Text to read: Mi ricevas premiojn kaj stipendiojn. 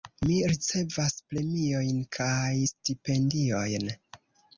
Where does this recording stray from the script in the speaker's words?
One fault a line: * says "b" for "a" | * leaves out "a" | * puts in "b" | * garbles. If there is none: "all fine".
all fine